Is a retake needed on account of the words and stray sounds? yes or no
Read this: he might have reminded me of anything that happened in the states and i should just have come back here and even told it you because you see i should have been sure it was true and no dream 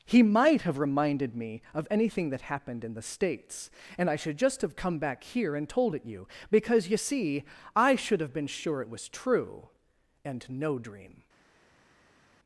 yes